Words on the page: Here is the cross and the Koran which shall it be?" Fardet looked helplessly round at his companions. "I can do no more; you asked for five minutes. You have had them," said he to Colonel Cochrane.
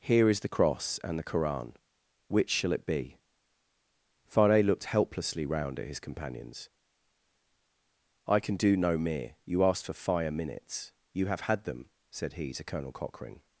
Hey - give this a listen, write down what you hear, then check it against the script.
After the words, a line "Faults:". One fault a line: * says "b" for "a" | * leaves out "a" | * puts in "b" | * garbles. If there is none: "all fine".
Here is the cross and the Koran which shall it be?" Fardet looked helplessly round at his companions. "I can do no mere; you asked for fire minutes. You have had them," said he to Colonel Cochrane.
Faults:
* says "mere" for "more"
* says "fire" for "five"